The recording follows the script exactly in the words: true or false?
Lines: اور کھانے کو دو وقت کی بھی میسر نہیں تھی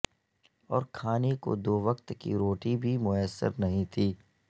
false